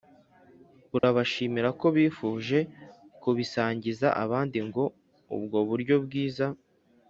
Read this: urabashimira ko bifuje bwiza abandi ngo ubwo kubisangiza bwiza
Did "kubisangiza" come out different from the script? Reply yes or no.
yes